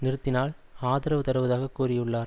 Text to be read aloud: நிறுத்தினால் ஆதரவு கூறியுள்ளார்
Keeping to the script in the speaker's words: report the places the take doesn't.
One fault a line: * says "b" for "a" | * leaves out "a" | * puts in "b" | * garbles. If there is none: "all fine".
* puts in "தருவதாக"